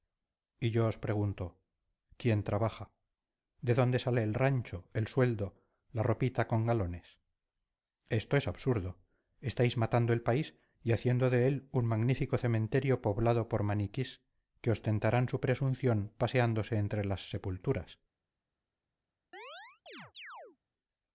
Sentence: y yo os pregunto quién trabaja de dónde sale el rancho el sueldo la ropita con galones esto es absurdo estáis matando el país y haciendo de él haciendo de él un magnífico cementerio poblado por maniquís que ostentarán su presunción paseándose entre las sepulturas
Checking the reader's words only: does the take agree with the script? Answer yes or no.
no